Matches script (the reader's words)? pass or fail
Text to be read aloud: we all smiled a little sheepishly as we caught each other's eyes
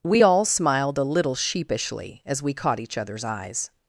pass